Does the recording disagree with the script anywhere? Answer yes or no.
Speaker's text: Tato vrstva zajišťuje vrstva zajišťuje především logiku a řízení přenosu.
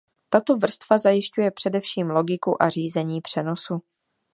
yes